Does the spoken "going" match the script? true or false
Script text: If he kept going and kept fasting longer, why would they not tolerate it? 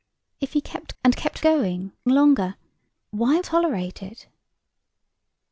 false